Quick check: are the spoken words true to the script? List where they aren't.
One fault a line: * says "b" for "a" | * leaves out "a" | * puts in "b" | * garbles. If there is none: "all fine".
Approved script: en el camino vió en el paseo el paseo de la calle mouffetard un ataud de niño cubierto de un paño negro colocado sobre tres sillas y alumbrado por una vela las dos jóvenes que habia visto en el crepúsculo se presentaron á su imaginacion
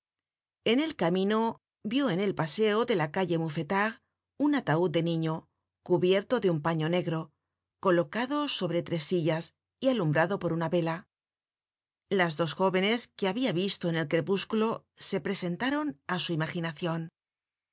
* leaves out "el paseo"